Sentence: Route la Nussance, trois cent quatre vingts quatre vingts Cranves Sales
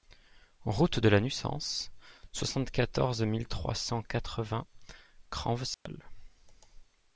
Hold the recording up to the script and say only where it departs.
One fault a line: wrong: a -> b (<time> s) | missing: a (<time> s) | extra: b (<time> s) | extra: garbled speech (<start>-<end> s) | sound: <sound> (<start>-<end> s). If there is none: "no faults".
extra: de (1.0 s)
extra: soixante quatorze mille (2.3 s)
missing: quatre vingts (4.6 s)
sound: dropout (5.7-5.9 s)